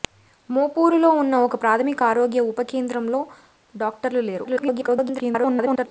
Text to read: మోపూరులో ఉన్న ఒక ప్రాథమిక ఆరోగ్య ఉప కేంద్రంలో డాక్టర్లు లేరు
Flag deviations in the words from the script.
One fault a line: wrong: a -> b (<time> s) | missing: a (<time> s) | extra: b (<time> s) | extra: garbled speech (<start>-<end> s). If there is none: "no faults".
extra: garbled speech (4.4-5.9 s)